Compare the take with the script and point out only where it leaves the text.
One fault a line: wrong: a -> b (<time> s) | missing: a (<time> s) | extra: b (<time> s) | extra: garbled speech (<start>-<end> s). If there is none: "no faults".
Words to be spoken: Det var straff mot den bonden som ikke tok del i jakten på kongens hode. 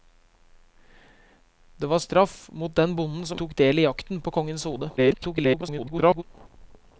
missing: ikke (3.4 s)
extra: garbled speech (5.0-6.2 s)